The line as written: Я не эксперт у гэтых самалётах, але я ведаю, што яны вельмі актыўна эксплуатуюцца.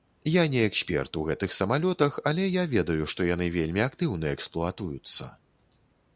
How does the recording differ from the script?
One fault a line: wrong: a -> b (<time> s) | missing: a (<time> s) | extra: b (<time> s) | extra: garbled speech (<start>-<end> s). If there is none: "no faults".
no faults